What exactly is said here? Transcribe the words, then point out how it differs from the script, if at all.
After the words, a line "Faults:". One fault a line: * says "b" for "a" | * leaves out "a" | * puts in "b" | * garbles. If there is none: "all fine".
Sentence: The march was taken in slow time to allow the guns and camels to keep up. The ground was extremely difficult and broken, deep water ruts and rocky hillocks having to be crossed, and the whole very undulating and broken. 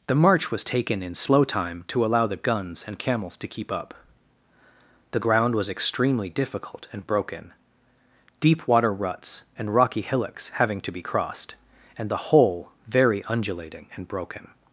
The march was taken in slow time to allow the guns and camels to keep up. The ground was extremely difficult and broken, deep water ruts and rocky hillocks having to be crossed, and the whole very undulating and broken.
Faults:
all fine